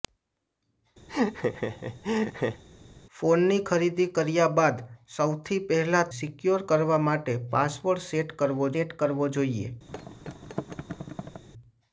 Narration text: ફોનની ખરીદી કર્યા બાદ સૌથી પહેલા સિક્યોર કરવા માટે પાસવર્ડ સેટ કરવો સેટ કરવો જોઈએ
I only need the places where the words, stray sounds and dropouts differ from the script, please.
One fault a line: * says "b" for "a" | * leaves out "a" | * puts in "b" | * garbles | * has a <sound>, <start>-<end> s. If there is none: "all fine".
* has a laugh, 1.1-2.6 s
* has a thud, 9.9-11.4 s